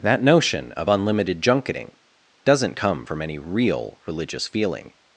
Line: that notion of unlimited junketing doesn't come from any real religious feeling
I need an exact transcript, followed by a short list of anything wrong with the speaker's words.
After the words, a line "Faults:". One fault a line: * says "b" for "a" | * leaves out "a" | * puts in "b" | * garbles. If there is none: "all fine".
that notion of unlimited junketing doesn't come from any real religious feeling
Faults:
all fine